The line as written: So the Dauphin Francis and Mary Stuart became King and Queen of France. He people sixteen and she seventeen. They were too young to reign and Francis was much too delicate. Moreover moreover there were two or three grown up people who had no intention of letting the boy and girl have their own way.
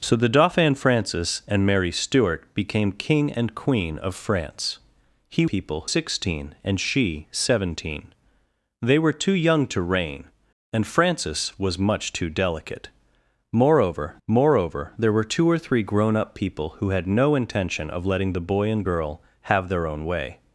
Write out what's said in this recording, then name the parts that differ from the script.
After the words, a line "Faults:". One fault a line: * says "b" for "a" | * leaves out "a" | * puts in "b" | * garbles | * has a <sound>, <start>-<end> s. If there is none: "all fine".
So the Dauphin Francis and Mary Stuart became King and Queen of France. He people sixteen and she seventeen. They were too young to reign and Francis was much too delicate. Moreover moreover there were two or three grown up people who had no intention of letting the boy and girl have their own way.
Faults:
all fine